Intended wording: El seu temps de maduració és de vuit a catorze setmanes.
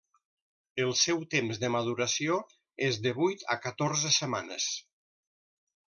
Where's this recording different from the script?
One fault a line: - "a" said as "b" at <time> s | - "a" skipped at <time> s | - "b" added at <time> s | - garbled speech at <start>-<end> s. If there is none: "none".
none